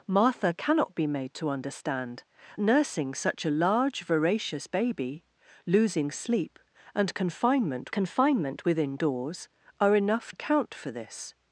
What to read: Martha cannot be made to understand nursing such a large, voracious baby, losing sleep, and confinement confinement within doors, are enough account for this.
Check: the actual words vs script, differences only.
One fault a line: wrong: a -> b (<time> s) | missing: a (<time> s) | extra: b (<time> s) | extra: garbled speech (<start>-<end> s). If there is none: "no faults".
no faults